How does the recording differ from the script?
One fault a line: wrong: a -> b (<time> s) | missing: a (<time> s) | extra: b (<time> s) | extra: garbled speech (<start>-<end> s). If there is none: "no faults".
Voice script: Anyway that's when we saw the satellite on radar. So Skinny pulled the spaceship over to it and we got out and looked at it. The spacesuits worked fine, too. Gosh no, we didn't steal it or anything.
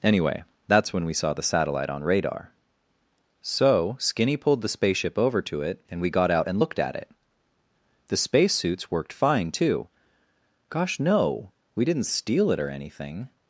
no faults